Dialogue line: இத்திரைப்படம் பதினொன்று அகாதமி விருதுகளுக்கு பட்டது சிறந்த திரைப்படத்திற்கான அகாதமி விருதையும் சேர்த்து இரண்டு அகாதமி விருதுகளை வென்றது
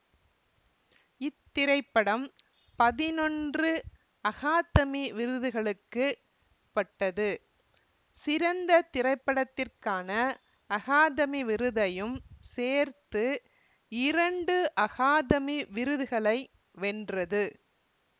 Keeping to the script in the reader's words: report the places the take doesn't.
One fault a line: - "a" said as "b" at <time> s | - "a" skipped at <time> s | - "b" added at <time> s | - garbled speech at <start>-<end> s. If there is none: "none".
none